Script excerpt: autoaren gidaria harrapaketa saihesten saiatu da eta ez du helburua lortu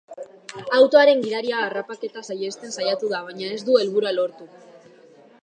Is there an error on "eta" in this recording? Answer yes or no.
yes